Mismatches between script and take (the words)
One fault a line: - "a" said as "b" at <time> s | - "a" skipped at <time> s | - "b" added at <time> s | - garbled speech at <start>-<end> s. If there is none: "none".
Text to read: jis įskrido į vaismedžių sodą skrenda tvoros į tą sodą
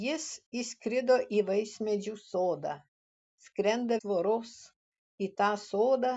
none